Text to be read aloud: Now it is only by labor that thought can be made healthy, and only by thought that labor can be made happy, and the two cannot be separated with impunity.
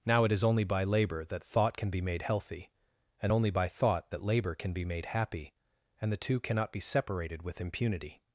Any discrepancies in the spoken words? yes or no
no